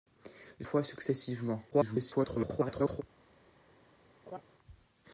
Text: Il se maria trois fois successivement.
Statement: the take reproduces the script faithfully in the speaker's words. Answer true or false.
false